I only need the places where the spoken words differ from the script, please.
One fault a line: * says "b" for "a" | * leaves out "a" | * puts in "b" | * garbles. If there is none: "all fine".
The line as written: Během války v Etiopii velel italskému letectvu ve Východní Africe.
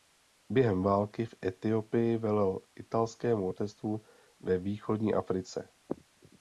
all fine